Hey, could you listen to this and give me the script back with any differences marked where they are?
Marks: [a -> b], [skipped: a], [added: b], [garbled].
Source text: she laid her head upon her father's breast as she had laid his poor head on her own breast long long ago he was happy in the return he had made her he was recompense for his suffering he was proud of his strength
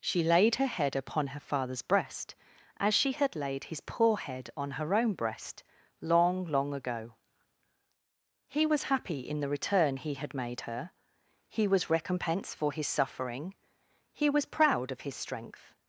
she laid her head upon her father's breast as she had laid his poor head on her own breast long long ago he was happy in the return he had made her he was recompense for his suffering he was proud of his strength